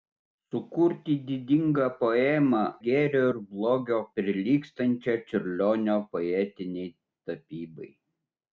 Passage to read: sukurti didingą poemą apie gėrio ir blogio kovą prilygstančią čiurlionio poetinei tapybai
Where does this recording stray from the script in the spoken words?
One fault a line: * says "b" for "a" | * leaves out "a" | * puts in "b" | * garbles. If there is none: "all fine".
* leaves out "apie"
* leaves out "kovą"